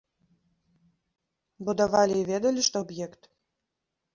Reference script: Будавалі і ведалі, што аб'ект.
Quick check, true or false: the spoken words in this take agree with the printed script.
true